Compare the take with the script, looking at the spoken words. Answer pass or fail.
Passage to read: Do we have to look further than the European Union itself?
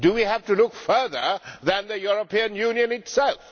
pass